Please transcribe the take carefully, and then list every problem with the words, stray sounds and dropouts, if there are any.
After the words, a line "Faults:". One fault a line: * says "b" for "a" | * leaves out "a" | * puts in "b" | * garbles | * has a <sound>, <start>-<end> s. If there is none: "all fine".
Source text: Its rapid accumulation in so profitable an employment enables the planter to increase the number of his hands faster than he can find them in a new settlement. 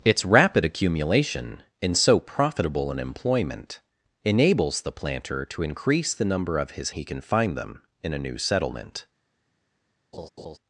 Its rapid accumulation in so profitable an employment enables the planter to increase the number of his he can find them in a new settlement.
Faults:
* leaves out "hands faster than"
* has a laugh, 10.1-10.6 s